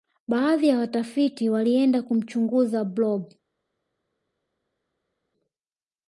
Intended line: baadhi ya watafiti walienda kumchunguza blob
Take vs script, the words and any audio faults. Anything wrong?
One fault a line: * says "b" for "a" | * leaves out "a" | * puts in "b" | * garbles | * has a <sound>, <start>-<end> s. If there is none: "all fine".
all fine